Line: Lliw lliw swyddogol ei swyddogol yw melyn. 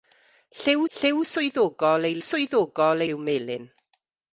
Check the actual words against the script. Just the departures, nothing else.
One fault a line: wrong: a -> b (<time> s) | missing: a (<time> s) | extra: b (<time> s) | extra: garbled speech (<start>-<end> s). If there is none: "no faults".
no faults